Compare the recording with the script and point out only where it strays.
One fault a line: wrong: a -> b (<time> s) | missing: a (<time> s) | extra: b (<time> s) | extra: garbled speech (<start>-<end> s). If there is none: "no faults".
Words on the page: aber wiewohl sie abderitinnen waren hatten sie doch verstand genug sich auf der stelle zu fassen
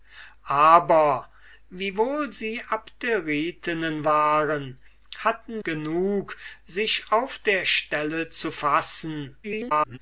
missing: sie doch verstand (5.6 s)
extra: garbled speech (9.4-10.0 s)